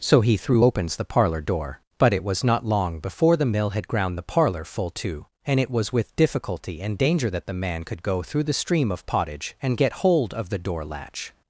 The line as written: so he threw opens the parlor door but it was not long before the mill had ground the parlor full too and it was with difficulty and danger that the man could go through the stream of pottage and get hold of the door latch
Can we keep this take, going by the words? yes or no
yes